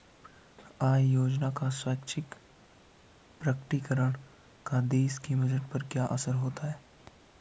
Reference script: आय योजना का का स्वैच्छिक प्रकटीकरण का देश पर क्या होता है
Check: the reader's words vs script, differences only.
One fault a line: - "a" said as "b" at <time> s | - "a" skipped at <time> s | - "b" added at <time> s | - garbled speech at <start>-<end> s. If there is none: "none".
- "का" skipped at 1.7 s
- "के बजट" added at 5.2 s
- "असर" added at 6.0 s